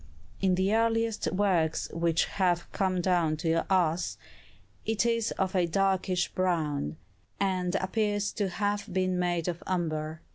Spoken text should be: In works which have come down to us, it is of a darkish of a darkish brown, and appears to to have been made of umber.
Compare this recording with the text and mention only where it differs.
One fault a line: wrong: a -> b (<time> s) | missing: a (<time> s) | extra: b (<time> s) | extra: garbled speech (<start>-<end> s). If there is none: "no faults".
extra: the earliest (0.6 s)
missing: of a darkish (6.3 s)
missing: to (8.5 s)